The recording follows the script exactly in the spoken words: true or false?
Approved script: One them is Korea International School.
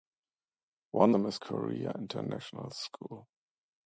true